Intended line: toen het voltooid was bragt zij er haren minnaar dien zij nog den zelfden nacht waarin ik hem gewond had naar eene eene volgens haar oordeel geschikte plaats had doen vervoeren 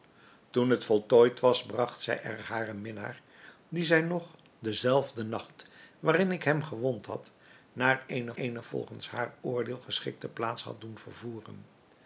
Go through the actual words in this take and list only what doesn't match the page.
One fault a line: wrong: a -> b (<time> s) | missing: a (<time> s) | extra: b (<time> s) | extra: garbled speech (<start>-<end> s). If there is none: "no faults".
no faults